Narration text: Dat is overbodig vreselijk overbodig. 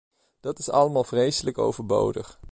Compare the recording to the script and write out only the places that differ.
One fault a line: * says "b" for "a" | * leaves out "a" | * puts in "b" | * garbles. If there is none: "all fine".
* says "allemaal" for "overbodig"